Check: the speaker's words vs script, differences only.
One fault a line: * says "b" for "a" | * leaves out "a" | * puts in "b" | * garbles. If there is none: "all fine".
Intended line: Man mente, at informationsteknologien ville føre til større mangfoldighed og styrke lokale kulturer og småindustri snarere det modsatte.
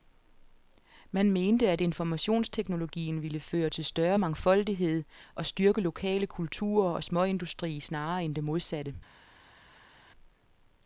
* puts in "end"